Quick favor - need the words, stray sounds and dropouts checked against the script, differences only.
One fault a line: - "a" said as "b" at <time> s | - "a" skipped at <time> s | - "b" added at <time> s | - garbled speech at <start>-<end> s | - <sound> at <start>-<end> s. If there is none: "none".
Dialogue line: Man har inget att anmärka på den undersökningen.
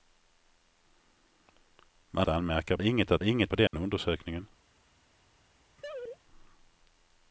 - "har" said as "anmärka" at 2.3 s
- "anmärka" said as "inget" at 3.2 s
- dropout at 3.7-3.7 s
- laugh at 5.8-6.2 s